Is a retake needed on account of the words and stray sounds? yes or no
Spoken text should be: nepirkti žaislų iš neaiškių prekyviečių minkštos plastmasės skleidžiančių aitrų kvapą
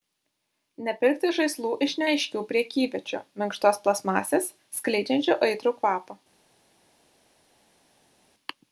no